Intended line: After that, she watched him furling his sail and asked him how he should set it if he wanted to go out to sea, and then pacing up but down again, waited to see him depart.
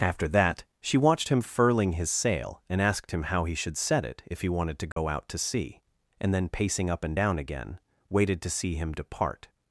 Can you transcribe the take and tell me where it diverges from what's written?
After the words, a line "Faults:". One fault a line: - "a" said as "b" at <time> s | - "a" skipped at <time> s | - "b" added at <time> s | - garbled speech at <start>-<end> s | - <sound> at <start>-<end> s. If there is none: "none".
After that, she watched him furling his sail and asked him how he should set it if he wanted to go out to sea, and then pacing up and down again, waited to see him depart.
Faults:
- dropout at 4.9-5.0 s
- "but" said as "and" at 7.0 s